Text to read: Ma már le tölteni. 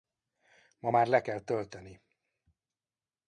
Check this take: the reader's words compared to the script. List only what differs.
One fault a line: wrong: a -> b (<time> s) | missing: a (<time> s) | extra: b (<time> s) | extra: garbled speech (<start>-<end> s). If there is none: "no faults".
extra: kell (1.2 s)